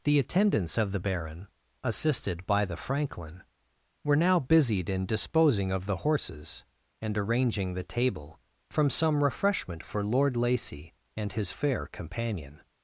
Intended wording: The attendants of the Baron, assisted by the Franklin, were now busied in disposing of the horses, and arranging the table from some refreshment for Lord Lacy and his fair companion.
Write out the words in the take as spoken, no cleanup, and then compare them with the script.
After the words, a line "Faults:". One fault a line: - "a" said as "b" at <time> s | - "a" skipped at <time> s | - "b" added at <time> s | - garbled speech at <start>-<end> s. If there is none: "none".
The attendants of the Baron, assisted by the Franklin, were now busied in disposing of the horses, and arranging the table from some refreshment for Lord Lacy and his fair companion.
Faults:
none